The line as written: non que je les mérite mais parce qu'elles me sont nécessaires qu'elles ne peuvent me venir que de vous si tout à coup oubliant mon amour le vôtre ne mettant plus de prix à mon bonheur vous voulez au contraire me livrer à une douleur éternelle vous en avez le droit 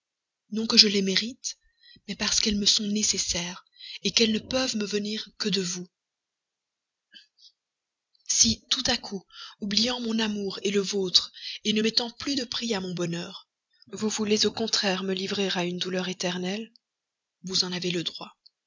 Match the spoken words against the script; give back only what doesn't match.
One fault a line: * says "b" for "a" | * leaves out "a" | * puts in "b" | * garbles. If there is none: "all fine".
all fine